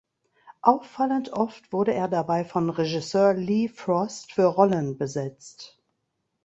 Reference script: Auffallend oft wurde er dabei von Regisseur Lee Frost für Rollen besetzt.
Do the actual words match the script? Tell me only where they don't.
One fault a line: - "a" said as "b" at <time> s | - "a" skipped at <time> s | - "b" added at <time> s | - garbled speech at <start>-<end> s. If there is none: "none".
none